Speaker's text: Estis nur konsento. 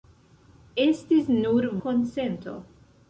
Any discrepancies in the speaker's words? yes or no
no